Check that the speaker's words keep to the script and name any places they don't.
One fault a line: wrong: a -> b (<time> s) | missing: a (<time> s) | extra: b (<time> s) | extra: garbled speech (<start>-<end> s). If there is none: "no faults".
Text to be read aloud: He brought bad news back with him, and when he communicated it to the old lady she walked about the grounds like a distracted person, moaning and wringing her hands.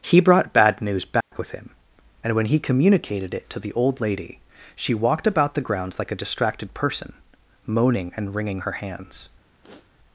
no faults